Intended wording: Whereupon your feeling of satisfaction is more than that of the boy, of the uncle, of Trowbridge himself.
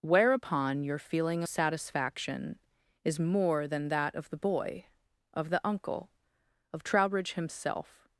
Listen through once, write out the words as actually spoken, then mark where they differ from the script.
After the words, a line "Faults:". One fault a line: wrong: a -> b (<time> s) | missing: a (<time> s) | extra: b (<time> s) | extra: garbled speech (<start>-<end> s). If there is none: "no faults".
Whereupon your feeling satisfaction is more than that of the boy, of the uncle, of Trowbridge himself.
Faults:
missing: of (1.4 s)